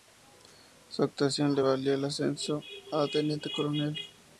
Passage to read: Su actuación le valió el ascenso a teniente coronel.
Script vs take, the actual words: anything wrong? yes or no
no